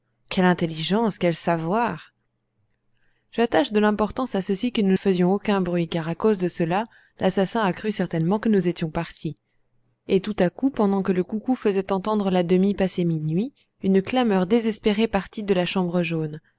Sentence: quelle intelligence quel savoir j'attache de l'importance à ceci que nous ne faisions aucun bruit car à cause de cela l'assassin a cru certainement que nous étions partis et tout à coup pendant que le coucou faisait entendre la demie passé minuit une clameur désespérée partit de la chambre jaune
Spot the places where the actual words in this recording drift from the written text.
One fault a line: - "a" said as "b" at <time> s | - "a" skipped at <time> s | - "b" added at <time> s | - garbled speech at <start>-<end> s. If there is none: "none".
- "ne" skipped at 5.0 s